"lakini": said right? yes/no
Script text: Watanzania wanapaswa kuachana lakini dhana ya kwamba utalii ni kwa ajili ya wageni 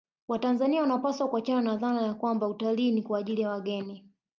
no